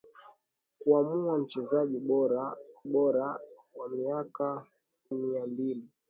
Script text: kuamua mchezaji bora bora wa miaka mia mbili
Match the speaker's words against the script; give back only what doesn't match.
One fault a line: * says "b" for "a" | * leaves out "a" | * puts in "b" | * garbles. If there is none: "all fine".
all fine